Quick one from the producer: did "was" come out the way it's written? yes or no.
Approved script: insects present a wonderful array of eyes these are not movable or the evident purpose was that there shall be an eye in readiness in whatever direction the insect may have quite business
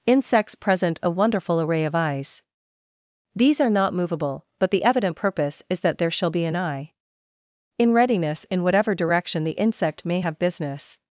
no